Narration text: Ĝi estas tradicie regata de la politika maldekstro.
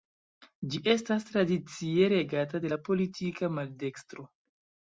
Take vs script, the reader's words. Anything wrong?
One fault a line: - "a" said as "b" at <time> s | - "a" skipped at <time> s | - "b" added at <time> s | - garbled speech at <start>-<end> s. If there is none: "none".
none